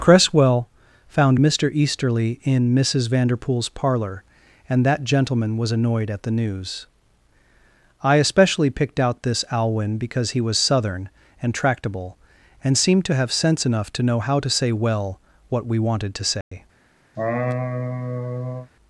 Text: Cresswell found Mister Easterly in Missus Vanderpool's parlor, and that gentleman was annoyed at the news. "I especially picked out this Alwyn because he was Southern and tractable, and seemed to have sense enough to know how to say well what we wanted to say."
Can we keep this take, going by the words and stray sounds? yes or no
no